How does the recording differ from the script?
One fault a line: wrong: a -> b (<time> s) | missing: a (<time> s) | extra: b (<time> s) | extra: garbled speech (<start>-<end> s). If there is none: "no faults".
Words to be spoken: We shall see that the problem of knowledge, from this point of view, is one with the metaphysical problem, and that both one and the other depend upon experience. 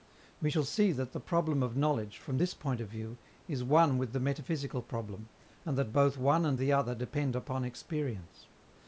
no faults